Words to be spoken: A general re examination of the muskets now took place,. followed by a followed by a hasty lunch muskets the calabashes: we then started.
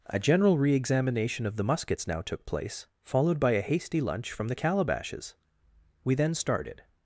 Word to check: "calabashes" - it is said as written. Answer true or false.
true